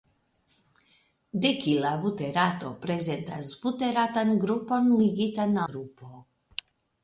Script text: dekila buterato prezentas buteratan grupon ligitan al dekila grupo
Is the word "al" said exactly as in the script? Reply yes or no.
no